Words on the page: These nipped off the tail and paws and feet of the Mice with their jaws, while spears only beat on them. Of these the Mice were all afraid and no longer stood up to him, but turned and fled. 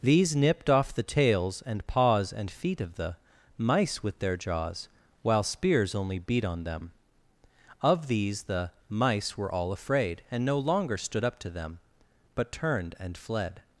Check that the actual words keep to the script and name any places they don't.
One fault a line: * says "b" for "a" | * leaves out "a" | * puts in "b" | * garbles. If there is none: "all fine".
* says "tails" for "tail"
* says "them" for "him"